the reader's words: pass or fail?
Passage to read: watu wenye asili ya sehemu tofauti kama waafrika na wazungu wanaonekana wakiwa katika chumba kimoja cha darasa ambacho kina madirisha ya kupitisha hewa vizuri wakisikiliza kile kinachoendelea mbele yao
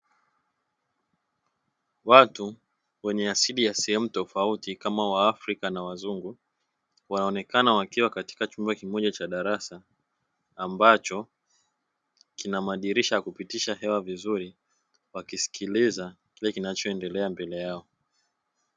pass